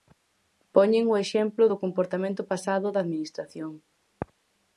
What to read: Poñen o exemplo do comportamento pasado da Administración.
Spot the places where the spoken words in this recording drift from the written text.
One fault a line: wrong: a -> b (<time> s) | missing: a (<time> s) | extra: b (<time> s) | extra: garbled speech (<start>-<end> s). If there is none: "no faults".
no faults